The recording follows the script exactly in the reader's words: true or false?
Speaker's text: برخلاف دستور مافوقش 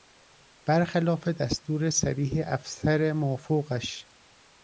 false